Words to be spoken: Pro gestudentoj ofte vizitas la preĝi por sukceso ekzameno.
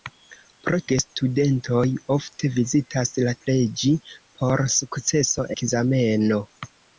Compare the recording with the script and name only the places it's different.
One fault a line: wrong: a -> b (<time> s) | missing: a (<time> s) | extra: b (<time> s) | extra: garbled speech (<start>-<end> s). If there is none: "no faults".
no faults